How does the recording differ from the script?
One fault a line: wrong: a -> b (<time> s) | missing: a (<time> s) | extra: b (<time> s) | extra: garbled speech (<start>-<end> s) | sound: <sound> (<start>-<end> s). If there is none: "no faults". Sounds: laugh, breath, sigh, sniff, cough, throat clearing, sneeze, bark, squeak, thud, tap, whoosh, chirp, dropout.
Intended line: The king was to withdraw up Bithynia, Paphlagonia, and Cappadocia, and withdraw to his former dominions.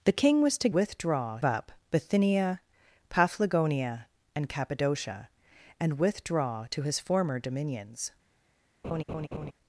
sound: laugh (8.8-9.5 s)